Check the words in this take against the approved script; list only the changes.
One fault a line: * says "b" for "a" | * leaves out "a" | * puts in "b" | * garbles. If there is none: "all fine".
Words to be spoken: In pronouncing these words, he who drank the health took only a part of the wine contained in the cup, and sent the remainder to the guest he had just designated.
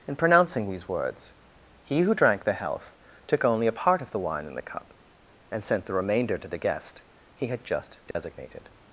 * leaves out "contained"